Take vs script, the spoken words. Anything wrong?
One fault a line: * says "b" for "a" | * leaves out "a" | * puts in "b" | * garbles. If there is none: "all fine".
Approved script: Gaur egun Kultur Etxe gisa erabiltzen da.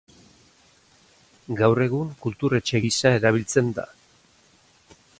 all fine